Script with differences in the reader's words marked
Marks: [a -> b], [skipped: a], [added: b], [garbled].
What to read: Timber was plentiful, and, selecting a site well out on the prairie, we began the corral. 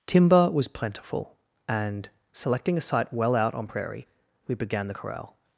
Timber was plentiful, and, selecting a site well out on [skipped: the] prairie, we began the corral.